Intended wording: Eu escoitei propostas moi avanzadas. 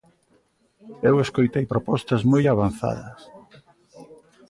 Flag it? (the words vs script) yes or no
no